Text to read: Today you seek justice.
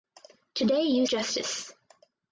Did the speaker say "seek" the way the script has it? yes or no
no